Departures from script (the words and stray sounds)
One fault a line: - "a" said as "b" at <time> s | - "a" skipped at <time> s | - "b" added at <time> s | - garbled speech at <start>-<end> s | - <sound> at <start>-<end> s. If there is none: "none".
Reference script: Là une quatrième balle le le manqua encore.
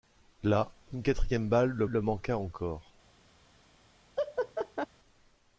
- laugh at 4.2-4.9 s